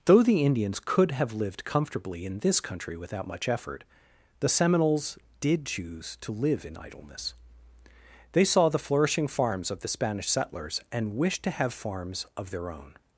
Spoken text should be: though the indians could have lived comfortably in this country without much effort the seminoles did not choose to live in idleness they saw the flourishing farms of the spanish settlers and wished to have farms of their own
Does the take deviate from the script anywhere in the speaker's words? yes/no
yes